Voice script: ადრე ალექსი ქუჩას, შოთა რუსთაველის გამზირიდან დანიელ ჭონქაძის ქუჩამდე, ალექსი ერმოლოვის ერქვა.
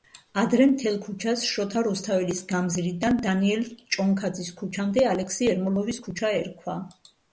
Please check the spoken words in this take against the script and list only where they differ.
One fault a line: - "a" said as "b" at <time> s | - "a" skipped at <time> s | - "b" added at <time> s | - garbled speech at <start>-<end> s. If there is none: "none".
- "ალექსი" said as "მთელ" at 0.7 s
- "ქუჩა" added at 6.1 s